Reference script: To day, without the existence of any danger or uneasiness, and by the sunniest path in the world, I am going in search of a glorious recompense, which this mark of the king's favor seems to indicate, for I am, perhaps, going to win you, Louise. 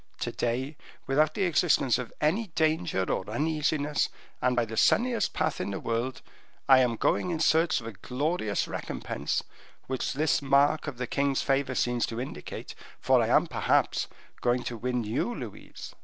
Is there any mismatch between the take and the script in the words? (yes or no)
no